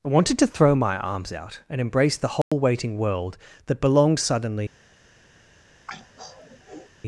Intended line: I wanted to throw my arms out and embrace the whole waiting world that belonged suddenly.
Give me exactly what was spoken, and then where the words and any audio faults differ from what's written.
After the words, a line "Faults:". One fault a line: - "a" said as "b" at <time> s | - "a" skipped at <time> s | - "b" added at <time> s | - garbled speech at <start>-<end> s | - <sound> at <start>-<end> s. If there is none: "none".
I wanted to throw my arms out and embrace the whole waiting world that belonged suddenly.
Faults:
- dropout at 2.4-2.5 s
- throat clearing at 5.9-6.9 s